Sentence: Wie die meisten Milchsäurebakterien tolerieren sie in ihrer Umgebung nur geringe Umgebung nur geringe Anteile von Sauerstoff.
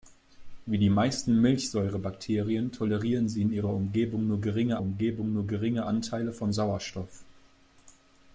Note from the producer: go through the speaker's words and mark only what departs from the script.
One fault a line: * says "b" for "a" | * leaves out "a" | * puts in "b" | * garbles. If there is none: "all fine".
all fine